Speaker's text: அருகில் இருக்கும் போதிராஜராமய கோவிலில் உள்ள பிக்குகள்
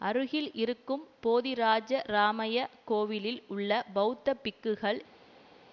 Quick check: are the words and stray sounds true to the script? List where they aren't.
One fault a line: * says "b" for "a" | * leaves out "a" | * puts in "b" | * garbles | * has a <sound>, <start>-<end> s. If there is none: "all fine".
* puts in "பெளத்த"